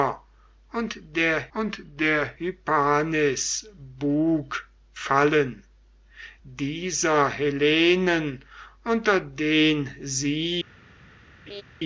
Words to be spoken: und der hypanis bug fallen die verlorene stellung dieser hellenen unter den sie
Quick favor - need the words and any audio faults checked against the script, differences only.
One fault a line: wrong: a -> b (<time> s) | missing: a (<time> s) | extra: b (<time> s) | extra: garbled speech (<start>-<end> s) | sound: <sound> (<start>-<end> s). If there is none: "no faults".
extra: und der (1.5 s)
missing: die verlorene stellung (5.6 s)
sound: laugh (11.5-11.6 s)